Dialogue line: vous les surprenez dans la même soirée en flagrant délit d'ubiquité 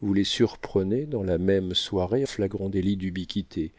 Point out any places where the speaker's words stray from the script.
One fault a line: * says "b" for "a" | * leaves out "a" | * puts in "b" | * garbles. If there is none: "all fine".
* leaves out "en"